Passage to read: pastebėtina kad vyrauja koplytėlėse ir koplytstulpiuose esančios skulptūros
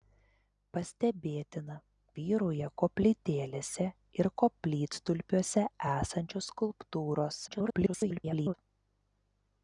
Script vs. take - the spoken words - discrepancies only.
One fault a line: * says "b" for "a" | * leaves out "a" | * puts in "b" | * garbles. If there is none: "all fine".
* leaves out "kad"
* garbles